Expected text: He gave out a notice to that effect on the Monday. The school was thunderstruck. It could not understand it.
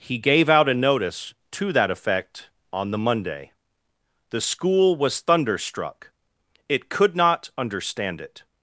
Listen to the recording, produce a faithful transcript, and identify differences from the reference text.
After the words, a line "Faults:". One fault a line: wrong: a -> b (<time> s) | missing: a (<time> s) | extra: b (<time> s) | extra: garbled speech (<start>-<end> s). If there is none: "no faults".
He gave out a notice to that effect on the Monday. The school was thunderstruck. It could not understand it.
Faults:
no faults